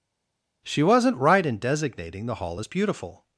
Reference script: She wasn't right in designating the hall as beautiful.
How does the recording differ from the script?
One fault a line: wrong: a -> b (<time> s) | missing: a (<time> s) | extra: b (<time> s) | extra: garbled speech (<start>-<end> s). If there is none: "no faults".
no faults